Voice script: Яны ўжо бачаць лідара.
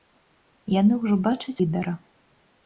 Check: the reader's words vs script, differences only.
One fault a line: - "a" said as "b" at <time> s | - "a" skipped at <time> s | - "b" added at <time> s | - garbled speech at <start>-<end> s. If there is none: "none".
none